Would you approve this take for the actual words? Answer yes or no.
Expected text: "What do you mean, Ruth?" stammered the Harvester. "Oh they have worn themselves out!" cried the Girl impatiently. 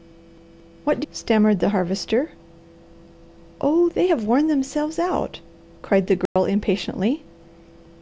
no